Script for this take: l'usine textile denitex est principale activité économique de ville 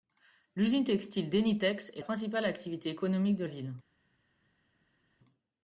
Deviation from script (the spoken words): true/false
false